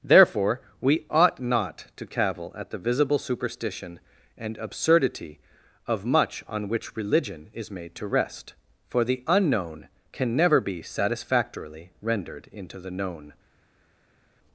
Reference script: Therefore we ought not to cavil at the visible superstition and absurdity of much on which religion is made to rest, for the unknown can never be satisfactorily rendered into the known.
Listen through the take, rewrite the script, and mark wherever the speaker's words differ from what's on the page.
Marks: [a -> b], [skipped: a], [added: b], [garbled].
Therefore we ought not to cavil at the visible superstition and absurdity of much on which religion is made to rest, for the unknown can never be satisfactorily rendered into the known.